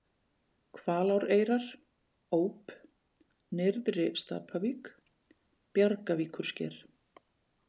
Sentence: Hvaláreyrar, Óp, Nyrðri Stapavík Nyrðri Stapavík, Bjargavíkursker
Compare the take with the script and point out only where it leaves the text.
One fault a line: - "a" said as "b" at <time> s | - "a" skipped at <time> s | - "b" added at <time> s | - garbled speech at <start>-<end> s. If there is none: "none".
- "Nyrðri Stapavík" skipped at 4.9 s